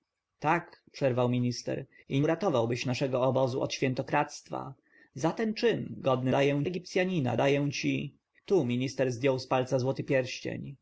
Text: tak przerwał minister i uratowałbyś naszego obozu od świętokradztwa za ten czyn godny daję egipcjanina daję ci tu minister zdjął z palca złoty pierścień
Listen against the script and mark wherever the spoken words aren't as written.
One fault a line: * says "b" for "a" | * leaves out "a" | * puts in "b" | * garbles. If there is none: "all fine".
all fine